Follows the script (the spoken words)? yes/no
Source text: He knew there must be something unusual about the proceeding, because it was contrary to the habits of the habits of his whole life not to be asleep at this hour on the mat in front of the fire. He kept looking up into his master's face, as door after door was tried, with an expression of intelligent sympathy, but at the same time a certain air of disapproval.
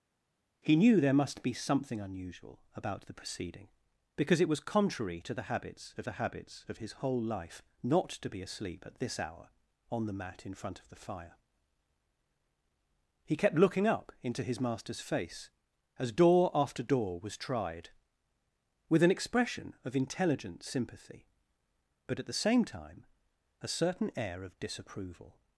yes